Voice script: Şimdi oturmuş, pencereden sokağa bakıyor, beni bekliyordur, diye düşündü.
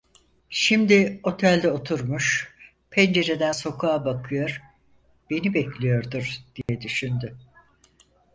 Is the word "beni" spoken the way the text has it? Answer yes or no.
yes